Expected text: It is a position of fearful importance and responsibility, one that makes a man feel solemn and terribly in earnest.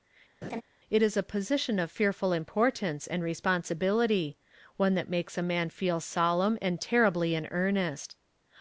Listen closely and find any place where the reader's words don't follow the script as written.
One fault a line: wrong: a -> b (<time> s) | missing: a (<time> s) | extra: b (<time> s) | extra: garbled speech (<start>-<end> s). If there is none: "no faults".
no faults